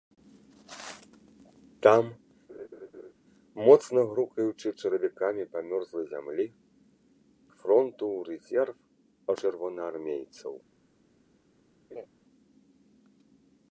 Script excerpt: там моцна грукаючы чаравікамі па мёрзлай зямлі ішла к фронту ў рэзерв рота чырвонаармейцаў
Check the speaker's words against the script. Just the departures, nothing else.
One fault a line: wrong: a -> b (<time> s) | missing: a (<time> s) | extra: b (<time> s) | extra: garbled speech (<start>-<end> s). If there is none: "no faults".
missing: ішла (6.5 s)
missing: рота (8.8 s)